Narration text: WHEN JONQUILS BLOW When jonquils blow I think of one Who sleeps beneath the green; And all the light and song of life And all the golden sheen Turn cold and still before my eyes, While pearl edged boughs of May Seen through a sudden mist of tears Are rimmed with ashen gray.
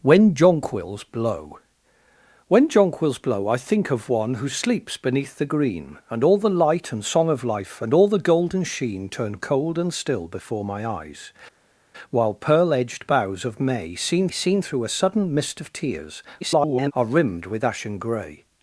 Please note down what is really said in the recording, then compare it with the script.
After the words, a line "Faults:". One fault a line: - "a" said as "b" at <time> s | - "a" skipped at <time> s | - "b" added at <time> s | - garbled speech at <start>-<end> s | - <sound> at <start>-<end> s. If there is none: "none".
WHEN JONQUILS BLOW When jonquils blow I think of one Who sleeps beneath the green; And all the light and song of life And all the golden sheen Turn cold and still before my eyes, While pearl edged boughs of May Seen Seen through a sudden mist of tears [garbled] Are rimmed with ashen gray.
Faults:
- "Seen" added at 14.3 s
- garbled speech at 16.4-16.9 s